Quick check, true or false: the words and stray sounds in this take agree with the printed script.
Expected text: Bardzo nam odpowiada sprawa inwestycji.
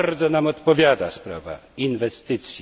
true